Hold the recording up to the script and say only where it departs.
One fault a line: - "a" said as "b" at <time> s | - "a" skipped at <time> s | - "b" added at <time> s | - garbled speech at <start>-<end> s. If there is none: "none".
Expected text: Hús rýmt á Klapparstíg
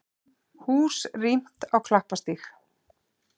none